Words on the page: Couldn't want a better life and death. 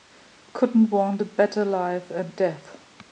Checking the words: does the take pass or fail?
pass